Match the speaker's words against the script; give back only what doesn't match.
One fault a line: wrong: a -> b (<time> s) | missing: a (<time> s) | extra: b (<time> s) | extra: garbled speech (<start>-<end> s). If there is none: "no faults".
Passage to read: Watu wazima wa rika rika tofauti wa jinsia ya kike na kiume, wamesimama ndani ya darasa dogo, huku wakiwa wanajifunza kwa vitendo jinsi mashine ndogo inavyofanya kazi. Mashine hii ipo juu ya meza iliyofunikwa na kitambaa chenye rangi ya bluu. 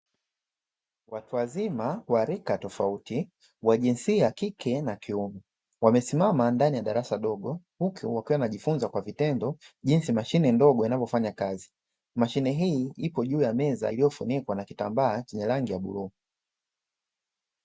missing: rika (2.6 s)